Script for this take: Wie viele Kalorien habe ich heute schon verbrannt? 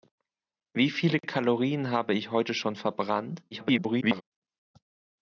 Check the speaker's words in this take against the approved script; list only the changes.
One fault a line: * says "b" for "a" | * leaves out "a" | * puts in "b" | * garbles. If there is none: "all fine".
* garbles